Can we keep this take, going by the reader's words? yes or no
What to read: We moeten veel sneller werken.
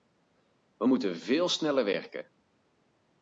yes